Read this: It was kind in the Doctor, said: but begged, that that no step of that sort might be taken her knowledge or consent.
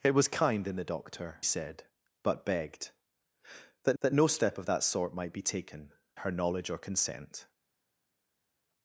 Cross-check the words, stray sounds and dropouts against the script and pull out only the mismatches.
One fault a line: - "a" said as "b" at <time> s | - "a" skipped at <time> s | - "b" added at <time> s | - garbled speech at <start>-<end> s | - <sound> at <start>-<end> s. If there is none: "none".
none